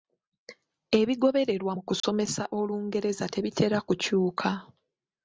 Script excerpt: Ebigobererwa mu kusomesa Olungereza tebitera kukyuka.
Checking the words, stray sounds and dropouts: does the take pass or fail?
fail